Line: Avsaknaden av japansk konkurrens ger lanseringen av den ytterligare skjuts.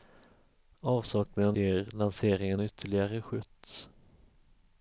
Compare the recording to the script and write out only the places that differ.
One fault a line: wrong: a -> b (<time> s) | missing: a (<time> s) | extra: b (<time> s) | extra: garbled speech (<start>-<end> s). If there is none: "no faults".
missing: av japansk konkurrens (1.6 s)
missing: av den (2.6 s)